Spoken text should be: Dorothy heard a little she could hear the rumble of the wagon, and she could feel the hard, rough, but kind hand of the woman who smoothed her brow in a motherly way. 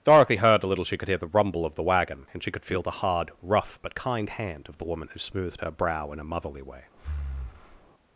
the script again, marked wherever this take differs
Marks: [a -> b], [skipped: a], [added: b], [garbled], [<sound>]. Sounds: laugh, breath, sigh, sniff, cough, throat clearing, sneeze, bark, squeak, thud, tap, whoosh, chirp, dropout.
Dorothy heard a little she could hear the rumble of the wagon, and she could feel the hard, rough, but kind hand of the woman who smoothed her brow in a motherly way. [breath]